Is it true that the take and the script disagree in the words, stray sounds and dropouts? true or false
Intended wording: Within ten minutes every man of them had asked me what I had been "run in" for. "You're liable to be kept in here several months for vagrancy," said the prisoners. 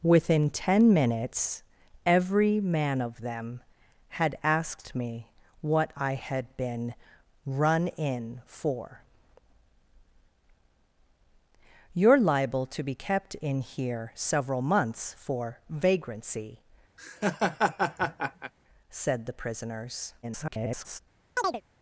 true